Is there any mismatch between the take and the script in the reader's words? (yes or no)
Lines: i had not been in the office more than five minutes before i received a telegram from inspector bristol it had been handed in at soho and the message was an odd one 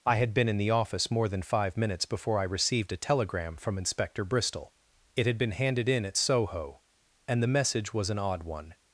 yes